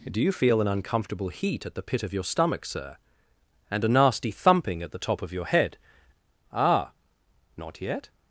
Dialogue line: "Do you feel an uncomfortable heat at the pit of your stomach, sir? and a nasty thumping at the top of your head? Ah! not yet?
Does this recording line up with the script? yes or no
yes